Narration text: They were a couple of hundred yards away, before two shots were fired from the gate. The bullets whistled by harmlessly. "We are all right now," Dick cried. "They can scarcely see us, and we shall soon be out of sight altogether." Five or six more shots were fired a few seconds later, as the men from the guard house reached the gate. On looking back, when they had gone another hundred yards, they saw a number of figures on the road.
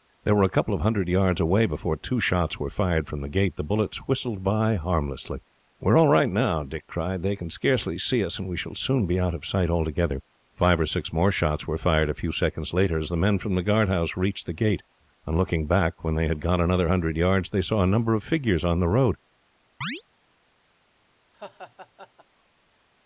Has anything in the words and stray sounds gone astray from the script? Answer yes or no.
yes